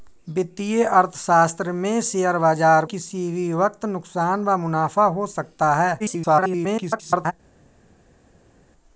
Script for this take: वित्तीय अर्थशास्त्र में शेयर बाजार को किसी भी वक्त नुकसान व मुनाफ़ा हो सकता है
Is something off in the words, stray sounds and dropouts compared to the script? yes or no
yes